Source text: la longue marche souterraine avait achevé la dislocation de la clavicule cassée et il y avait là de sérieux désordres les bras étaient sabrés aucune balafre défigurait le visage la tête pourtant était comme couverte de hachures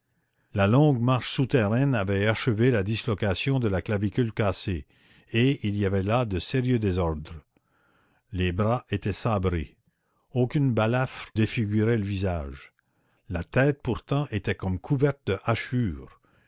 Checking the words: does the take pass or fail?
pass